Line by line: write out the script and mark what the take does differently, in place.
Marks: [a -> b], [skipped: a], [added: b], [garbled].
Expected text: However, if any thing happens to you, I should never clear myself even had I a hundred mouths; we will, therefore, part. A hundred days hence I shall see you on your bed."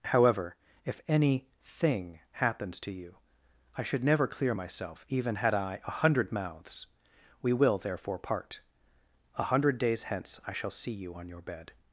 However, if any thing happens to you, I should never clear myself even had I a hundred mouths; we will, therefore, part. A hundred days hence I shall see you on your bed."